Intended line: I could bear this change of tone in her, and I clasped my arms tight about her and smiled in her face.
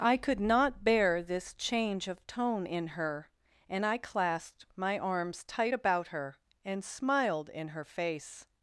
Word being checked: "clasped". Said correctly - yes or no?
yes